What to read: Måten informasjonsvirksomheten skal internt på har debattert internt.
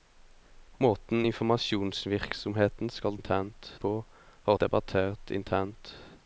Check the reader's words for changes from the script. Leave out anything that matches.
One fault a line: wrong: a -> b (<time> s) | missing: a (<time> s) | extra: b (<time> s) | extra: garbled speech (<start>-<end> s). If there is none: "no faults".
no faults